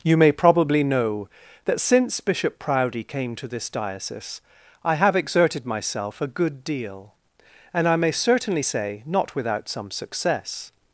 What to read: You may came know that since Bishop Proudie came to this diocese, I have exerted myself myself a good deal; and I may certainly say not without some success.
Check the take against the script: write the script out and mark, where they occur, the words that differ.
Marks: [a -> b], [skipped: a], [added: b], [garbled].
You may [came -> probably] know that since Bishop Proudie came to this diocese, I have exerted myself [skipped: myself] a good deal; and I may certainly say not without some success.